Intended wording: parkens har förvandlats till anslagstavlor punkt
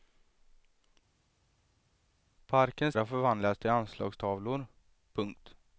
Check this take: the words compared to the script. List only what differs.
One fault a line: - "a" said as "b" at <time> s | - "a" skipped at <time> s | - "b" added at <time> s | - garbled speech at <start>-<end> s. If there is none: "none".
none